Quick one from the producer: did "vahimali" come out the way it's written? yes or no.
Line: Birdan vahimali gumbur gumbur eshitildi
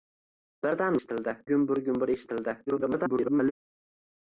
no